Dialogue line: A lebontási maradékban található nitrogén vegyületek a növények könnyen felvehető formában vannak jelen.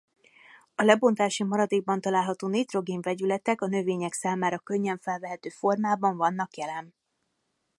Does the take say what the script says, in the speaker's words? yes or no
no